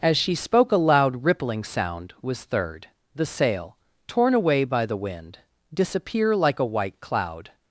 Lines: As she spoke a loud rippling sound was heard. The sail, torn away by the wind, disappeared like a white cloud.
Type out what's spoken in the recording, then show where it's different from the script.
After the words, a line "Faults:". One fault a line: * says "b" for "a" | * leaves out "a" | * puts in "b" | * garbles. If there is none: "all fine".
As she spoke a loud rippling sound was third. The sail, torn away by the wind, disappear like a white cloud.
Faults:
* says "third" for "heard"
* says "disappear" for "disappeared"